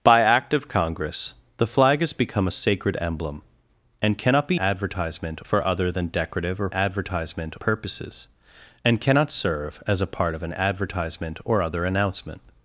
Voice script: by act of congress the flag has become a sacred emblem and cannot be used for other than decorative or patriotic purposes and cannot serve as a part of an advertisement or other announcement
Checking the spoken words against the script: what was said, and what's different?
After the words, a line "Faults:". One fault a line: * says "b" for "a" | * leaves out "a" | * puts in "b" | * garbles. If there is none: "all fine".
by act of congress the flag has become a sacred emblem and cannot be advertisement for other than decorative or advertisement purposes and cannot serve as a part of an advertisement or other announcement
Faults:
* says "advertisement" for "used"
* says "advertisement" for "patriotic"